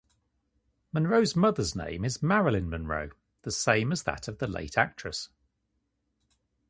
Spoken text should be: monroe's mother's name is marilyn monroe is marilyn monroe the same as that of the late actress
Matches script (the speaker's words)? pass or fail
fail